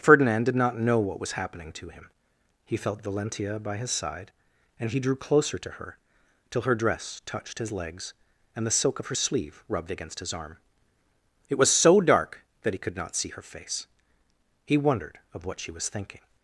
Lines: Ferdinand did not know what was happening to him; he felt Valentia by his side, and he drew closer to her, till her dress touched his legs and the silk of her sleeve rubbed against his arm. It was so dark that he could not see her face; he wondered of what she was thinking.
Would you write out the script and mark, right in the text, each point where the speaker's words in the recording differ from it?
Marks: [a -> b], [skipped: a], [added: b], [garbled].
Ferdinand did not know what was happening to him; he felt Valentia by his side, and he drew closer to her, till her dress touched his legs and the silk of her sleeve rubbed against his arm. It was so dark that he could not see her face; he wondered of what she was thinking.